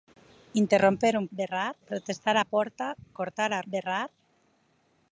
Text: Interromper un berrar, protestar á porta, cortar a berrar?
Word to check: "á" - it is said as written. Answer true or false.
true